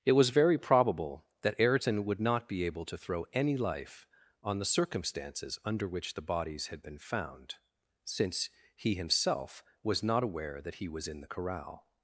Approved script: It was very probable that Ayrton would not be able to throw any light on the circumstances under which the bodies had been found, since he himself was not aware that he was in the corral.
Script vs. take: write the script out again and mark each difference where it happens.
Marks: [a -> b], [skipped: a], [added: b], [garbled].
It was very probable that Ayrton would not be able to throw any [light -> life] on the circumstances under which the bodies had been found, since he himself was not aware that he was in the corral.